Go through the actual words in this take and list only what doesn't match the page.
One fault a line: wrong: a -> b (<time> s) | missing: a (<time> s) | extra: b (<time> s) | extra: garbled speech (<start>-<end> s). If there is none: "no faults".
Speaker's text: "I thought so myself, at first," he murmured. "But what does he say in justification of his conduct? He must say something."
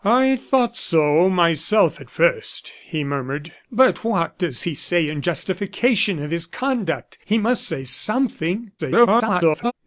extra: garbled speech (8.8-9.7 s)